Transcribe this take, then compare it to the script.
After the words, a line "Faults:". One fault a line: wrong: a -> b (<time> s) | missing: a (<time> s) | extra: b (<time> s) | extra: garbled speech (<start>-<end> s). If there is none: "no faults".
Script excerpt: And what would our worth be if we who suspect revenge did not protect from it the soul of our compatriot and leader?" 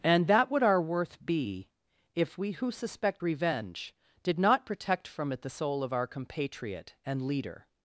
And that would our worth be if we who suspect revenge did not protect from it the soul of our compatriot and leader?"
Faults:
wrong: what -> that (0.3 s)